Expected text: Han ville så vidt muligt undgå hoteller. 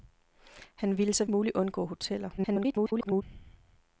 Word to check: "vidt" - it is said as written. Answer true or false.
false